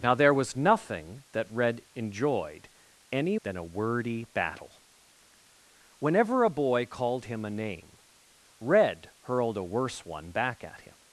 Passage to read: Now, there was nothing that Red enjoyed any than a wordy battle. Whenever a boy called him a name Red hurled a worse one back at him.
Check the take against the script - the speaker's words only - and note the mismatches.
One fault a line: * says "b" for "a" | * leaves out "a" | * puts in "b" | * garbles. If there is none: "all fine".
all fine